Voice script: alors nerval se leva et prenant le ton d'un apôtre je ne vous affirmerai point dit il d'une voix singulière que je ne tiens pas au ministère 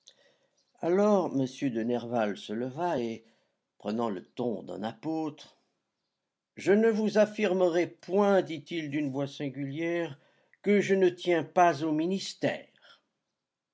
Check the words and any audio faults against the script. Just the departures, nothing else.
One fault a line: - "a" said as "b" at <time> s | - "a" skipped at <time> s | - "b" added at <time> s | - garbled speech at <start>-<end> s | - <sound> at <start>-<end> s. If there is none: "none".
- "m de" added at 1.3 s